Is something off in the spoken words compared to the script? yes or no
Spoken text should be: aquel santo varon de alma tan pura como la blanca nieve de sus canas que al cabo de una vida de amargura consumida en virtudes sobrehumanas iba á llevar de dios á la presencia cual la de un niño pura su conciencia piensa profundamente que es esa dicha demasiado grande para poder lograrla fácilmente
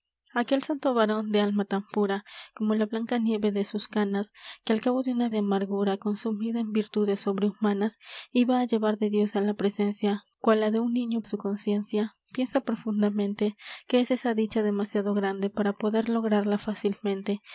yes